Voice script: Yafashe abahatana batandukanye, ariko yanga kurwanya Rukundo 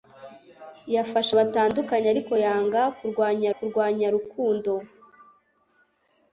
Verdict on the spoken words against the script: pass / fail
fail